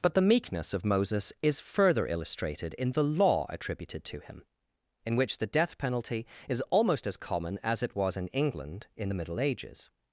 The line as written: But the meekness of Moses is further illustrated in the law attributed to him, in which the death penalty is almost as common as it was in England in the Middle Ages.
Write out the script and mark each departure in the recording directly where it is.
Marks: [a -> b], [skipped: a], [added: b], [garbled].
But the meekness of Moses is further illustrated in the law attributed to him, in which the death penalty is almost as common as it was in England in the Middle Ages.